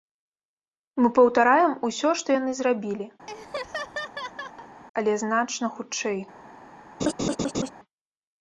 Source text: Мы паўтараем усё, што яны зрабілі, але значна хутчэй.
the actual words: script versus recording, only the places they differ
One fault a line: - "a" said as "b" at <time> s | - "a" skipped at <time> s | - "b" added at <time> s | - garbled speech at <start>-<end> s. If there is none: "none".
none